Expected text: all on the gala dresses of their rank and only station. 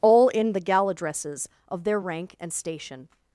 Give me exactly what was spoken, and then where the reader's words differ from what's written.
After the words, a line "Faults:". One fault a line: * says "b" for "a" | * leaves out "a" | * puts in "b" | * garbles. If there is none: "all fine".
all in the gala dresses of their rank and station.
Faults:
* says "in" for "on"
* leaves out "only"